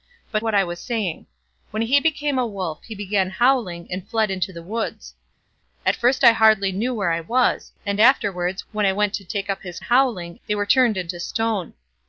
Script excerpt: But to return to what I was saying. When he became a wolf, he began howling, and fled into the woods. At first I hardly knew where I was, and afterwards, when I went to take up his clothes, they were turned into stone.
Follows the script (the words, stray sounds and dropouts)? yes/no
no